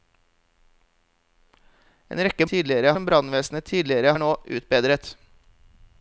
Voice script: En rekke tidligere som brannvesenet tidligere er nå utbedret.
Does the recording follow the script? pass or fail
pass